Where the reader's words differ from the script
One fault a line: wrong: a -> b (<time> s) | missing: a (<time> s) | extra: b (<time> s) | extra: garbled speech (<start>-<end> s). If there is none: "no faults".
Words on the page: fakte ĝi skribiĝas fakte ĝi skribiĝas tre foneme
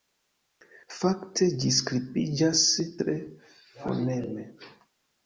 missing: fakte ĝi skribiĝas (2.6 s)